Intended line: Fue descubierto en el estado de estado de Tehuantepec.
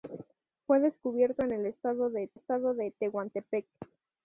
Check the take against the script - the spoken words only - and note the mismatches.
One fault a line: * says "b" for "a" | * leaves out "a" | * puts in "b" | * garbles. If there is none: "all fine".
all fine